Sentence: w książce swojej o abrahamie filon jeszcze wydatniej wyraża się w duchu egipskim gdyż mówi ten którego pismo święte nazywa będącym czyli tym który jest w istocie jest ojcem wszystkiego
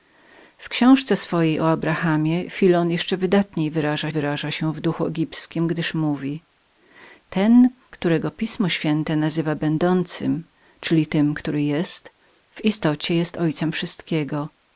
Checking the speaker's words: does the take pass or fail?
fail